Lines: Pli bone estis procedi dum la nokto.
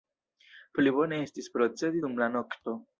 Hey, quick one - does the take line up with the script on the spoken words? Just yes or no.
yes